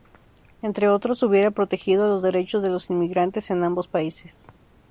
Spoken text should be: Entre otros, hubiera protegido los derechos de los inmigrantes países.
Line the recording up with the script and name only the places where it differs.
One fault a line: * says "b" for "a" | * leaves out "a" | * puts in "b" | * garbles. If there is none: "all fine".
* puts in "en ambos"